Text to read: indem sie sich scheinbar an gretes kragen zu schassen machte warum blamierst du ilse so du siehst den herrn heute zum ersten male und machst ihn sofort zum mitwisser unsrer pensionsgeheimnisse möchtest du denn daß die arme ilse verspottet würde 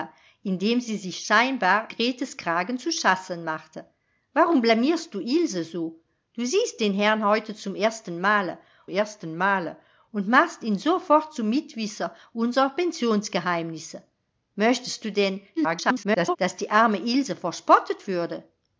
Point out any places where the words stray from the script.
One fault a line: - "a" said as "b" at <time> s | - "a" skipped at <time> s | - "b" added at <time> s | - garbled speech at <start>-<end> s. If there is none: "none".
- "an" skipped at 1.9 s
- "ersten male" added at 8.9 s
- garbled speech at 15.6-16.4 s